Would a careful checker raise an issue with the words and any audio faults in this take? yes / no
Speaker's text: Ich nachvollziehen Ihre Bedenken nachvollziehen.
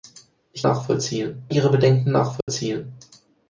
yes